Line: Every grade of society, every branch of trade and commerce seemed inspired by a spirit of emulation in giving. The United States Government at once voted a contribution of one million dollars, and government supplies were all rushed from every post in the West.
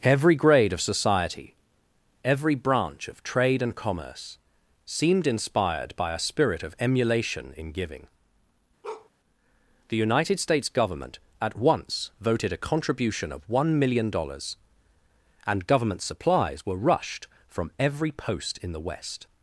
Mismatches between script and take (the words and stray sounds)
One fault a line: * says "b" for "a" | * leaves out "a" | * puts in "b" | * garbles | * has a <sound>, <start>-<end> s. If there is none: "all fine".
* has a bark, 8.8-9.1 s
* leaves out "all"